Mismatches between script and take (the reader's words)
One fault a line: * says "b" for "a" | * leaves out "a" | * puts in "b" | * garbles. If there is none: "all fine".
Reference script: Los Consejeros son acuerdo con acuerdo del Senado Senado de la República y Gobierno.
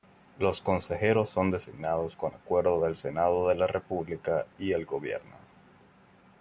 * says "designados" for "acuerdo"
* leaves out "Senado"
* puts in "el"